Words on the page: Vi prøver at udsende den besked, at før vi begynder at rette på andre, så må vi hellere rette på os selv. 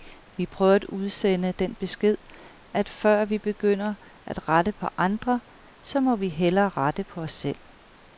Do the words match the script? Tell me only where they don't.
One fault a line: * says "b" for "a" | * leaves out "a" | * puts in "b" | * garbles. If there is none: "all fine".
all fine